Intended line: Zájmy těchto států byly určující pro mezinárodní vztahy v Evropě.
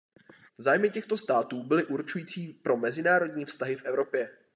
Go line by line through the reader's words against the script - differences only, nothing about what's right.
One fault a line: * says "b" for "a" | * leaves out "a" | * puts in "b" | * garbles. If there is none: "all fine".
all fine